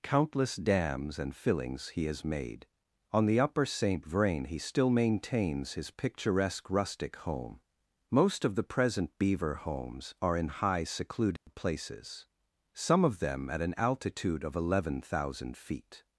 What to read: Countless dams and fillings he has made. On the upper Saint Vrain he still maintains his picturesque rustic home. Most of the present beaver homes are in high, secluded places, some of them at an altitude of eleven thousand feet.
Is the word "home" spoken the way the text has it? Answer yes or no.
yes